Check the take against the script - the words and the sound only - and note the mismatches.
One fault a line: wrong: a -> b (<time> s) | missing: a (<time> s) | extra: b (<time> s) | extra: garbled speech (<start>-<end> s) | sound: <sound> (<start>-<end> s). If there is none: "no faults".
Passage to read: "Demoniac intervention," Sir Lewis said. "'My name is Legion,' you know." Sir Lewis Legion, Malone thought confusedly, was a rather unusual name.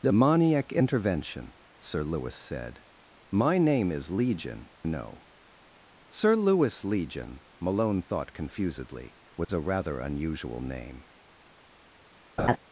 missing: you (4.7 s)
sound: dropout (9.4-9.5 s)
sound: laugh (12.4-12.6 s)